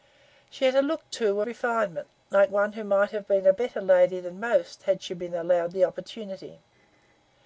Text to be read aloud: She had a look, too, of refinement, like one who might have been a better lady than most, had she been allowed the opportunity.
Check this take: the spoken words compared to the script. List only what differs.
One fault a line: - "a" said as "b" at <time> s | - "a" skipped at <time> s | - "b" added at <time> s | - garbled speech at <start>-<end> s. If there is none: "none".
- "of" skipped at 1.4 s